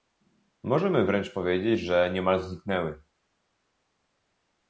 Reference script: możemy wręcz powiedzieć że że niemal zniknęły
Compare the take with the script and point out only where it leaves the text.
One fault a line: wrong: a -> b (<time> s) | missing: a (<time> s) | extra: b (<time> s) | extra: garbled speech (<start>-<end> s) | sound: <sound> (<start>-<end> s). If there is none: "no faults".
missing: że (2.1 s)